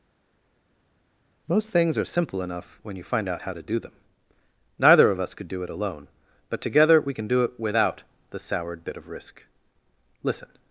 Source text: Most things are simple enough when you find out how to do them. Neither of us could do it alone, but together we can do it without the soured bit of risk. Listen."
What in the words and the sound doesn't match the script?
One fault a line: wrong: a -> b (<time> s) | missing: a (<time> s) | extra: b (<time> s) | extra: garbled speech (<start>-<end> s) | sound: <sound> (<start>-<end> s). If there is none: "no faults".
no faults